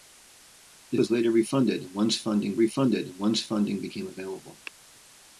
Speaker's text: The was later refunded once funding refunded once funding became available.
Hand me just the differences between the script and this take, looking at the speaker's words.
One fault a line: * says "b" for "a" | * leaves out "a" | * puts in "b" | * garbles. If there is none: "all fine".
all fine